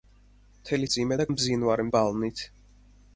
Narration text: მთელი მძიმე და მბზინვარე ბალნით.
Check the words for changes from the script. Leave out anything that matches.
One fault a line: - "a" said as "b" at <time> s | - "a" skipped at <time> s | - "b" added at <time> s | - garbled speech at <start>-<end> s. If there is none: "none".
none